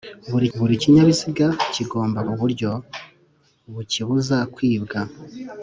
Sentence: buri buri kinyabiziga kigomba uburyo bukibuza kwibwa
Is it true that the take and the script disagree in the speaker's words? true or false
false